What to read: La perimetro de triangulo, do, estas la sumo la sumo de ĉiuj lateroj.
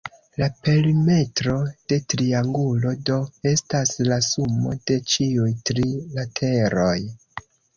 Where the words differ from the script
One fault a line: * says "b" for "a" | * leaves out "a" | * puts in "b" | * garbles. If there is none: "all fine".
* leaves out "la sumo"
* puts in "tri"